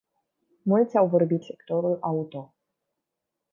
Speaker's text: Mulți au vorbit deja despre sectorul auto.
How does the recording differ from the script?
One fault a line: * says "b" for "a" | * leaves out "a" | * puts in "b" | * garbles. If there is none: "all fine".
* leaves out "deja despre"